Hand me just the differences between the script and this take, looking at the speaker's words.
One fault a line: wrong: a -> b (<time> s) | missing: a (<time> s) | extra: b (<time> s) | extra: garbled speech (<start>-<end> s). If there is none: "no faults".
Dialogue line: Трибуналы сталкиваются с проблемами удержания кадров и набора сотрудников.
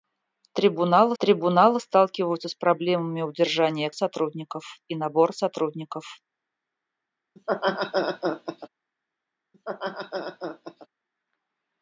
extra: трибуналы (1.2 s)
wrong: кадров -> сотрудников (3.9 s)